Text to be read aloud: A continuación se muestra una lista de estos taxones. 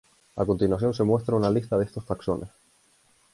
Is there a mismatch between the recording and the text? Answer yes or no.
no